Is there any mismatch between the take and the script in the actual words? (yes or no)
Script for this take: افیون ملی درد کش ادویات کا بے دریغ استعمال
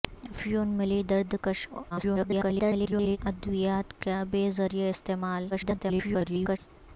yes